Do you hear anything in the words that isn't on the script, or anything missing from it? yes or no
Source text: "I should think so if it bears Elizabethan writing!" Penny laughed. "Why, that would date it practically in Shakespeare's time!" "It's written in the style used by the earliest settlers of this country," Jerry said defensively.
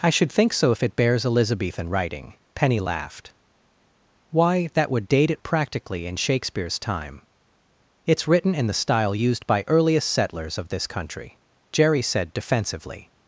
yes